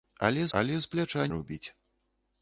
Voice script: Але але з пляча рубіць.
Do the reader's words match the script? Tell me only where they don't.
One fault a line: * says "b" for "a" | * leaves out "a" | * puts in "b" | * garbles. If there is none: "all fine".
all fine